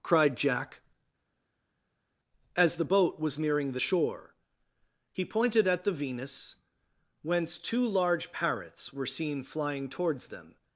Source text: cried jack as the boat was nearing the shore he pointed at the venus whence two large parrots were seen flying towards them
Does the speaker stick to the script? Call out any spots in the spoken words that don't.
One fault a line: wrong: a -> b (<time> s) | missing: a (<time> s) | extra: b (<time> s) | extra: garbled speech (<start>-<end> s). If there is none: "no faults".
no faults